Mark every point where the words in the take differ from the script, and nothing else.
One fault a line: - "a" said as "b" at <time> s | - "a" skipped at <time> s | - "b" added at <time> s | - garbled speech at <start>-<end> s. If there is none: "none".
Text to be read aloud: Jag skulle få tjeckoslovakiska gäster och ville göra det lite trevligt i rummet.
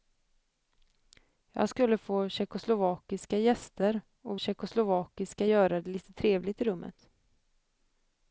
- "ville" said as "tjeckoslovakiska" at 4.4 s